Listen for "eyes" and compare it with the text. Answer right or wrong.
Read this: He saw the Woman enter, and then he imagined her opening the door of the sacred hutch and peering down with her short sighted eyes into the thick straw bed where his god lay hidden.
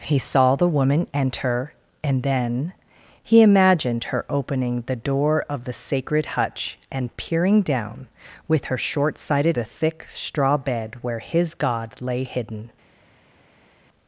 wrong